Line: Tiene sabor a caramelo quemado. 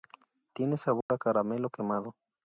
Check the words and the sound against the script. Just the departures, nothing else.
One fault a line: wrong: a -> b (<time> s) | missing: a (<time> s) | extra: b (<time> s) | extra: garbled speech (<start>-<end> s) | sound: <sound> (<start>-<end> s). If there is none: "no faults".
sound: dropout (1.0-1.1 s)